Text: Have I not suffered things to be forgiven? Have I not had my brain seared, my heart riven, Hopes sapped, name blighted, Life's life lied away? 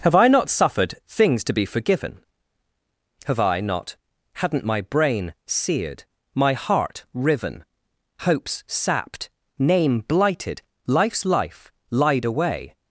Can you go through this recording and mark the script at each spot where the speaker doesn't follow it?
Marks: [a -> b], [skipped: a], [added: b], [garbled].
Have I not suffered things to be forgiven? Have I not [had -> hadn't] my brain seared, my heart riven, Hopes sapped, name blighted, Life's life lied away?